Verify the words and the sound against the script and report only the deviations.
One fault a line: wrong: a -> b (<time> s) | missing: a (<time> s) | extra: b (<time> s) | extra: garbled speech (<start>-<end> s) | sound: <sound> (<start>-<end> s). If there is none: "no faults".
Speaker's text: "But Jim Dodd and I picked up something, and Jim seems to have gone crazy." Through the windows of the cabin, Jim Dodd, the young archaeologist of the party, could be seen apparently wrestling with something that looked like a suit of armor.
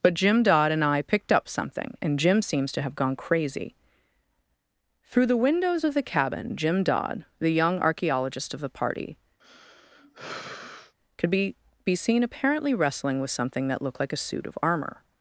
sound: sigh (9.4-10.9 s)
extra: be (11.8 s)